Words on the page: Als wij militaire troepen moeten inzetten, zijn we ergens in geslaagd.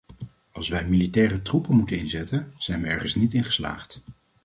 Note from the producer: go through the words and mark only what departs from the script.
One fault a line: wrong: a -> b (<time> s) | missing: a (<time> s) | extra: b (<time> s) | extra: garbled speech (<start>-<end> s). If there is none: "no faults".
extra: niet (3.1 s)